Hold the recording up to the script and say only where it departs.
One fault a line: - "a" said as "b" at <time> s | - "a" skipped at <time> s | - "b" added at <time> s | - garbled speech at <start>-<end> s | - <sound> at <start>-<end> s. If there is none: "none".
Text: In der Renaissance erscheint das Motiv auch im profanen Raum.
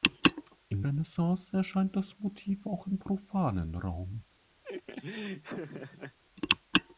- "der" skipped at 0.8 s
- laugh at 4.6-6.2 s